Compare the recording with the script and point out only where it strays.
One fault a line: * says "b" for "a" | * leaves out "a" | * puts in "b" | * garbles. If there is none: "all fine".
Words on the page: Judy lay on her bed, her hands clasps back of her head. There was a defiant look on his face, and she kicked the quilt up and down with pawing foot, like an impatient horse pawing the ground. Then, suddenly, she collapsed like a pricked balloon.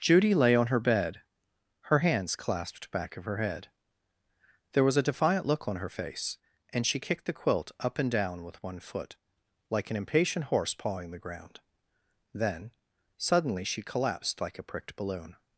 * says "clasped" for "clasps"
* says "her" for "his"
* says "one" for "pawing"